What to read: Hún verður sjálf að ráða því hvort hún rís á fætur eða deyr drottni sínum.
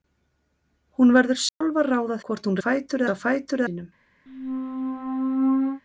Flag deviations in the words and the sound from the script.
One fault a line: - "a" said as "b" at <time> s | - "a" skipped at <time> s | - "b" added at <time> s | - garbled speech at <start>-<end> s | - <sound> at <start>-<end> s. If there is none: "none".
- dropout at 1.5-1.6 s
- "því" skipped at 2.2 s
- "rís" said as "fætur" at 2.7 s
- "eða deyr drottni" skipped at 3.6 s
- squeak at 4.3-5.8 s